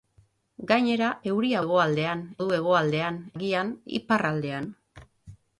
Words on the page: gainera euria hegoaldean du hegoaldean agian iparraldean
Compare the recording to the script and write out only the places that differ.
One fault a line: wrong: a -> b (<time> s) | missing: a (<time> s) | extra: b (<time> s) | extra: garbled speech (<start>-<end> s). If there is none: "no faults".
no faults